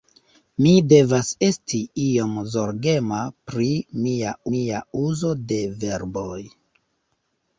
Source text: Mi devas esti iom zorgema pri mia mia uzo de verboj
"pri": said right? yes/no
yes